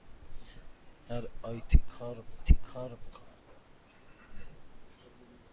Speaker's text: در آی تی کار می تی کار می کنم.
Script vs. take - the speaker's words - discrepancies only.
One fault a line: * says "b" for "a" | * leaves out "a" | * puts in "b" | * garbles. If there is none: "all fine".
all fine